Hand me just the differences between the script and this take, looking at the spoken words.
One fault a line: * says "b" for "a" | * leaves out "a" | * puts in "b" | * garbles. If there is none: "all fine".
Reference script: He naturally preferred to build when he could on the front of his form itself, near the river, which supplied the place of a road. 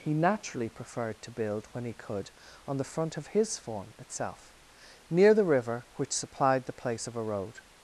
all fine